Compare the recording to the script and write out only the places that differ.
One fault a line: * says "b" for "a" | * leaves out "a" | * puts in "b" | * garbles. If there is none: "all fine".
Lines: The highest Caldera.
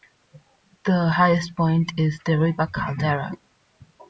* puts in "point is Deriba"